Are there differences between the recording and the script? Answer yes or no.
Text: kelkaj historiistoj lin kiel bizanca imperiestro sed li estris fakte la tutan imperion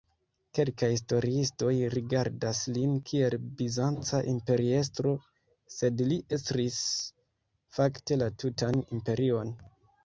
yes